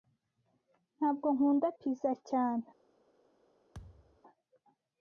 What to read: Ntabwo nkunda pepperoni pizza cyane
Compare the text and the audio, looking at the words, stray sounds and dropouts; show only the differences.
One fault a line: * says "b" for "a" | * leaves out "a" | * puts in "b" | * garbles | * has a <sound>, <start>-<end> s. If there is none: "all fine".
* leaves out "pepperoni"
* has a thud, 3.7-4.2 s